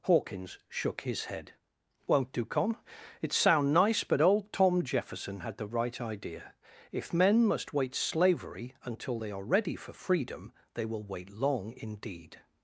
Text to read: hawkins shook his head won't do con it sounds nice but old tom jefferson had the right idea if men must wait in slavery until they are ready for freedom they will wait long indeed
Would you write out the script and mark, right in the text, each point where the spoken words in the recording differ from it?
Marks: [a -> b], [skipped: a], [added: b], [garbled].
hawkins shook his head won't do con it [sounds -> sound] nice but old tom jefferson had the right idea if men must wait [skipped: in] slavery until they are ready for freedom they will wait long indeed